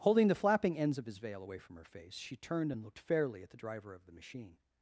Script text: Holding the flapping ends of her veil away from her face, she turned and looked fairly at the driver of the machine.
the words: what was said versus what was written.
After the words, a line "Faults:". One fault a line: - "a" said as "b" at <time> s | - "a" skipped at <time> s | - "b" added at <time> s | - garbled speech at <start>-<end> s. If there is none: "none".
Holding the flapping ends of his veil away from her face, she turned and looked fairly at the driver of the machine.
Faults:
- "her" said as "his" at 1.1 s